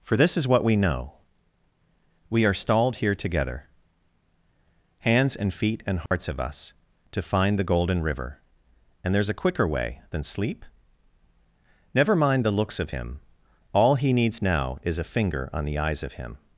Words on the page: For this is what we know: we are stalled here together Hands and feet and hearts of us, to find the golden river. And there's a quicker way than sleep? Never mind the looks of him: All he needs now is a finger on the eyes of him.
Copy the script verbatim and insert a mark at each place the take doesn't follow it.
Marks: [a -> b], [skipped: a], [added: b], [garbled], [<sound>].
For this is what we know: we are stalled here together Hands and feet and hearts [dropout] of us, to find the golden river. And there's a quicker way than sleep? Never mind the looks of him: All he needs now is a finger on the eyes of him.